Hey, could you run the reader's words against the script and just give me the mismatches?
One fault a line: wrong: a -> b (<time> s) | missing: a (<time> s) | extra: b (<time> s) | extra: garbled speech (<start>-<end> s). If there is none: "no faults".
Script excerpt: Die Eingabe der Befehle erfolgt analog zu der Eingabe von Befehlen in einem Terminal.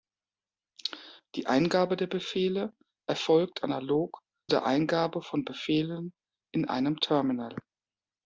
missing: zu (4.2 s)